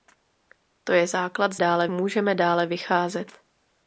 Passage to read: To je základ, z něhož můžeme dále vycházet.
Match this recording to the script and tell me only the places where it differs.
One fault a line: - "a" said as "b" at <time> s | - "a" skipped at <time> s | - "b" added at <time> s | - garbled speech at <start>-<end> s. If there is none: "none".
- "něhož" said as "dále" at 1.5 s